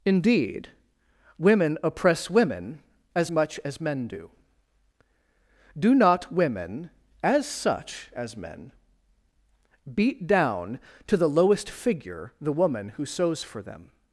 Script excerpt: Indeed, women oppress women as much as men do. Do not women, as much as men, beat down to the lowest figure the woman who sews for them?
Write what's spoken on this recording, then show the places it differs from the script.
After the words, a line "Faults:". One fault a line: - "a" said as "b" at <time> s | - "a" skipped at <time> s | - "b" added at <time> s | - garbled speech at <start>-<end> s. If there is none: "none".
Indeed, women oppress women as much as men do. Do not women, as such as men, beat down to the lowest figure the woman who sews for them?
Faults:
- "much" said as "such" at 7.5 s